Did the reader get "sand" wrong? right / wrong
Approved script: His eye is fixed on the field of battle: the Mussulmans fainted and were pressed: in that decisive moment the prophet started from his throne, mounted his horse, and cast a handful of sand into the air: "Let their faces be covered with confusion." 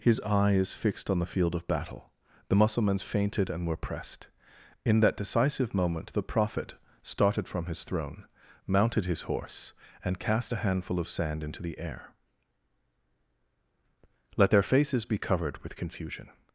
right